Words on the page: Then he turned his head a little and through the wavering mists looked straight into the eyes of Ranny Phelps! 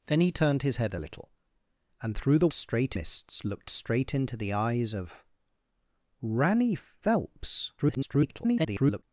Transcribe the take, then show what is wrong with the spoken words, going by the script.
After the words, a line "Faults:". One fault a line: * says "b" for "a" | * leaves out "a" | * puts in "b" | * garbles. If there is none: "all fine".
Then he turned his head a little and through the straight mists looked straight into the eyes of Ranny Phelps! [garbled]
Faults:
* says "straight" for "wavering"
* garbles